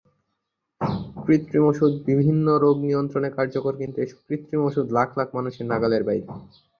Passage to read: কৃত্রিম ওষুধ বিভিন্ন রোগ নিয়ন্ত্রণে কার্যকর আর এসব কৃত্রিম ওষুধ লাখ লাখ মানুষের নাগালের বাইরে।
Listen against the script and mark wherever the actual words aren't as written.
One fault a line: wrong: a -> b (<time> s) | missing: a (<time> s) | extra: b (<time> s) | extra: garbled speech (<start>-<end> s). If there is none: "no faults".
wrong: আর -> কিন্তু (3.8 s)